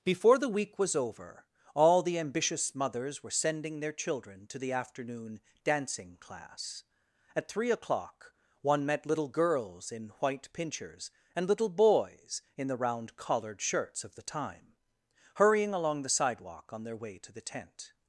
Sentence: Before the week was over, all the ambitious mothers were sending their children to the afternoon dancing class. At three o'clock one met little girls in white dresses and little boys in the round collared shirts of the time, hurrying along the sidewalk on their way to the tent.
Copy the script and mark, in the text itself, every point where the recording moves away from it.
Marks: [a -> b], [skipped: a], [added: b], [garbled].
Before the week was over, all the ambitious mothers were sending their children to the afternoon dancing class. At three o'clock one met little girls in white [dresses -> pinchers] and little boys in the round collared shirts of the time, hurrying along the sidewalk on their way to the tent.